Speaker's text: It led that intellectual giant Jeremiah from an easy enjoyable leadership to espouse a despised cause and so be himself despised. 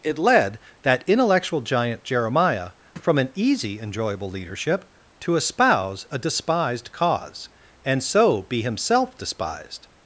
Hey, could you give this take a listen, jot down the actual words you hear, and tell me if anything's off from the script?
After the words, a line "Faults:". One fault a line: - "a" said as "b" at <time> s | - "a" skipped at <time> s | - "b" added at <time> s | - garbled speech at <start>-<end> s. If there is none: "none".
It led that intellectual giant Jeremiah from an easy enjoyable leadership to espouse a despised cause and so be himself despised.
Faults:
none